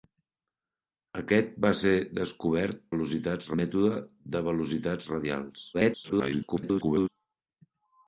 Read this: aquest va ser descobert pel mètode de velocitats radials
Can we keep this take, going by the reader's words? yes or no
no